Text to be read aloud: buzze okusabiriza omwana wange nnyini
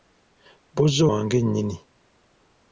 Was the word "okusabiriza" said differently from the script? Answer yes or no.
yes